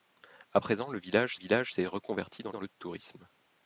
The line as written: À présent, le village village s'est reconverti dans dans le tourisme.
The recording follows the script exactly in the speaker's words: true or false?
true